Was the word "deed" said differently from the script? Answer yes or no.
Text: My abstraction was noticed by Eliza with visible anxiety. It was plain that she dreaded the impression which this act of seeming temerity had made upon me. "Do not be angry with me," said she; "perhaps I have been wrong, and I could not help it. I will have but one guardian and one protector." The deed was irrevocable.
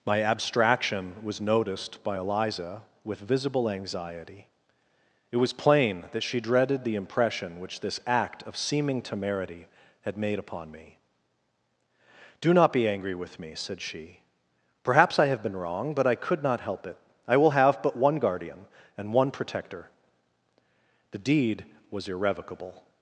no